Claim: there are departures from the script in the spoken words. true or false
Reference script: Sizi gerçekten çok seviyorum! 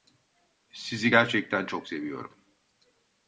false